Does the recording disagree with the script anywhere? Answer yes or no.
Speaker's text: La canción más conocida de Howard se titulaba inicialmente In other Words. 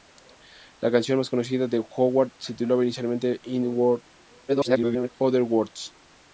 yes